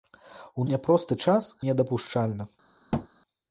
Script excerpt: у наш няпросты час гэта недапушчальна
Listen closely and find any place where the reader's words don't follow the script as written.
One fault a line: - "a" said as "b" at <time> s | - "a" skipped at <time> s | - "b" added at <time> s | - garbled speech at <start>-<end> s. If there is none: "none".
- "наш" skipped at 0.7 s
- "гэта" skipped at 1.5 s